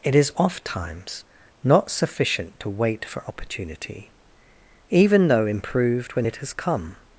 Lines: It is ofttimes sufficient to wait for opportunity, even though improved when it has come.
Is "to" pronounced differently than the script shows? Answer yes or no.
no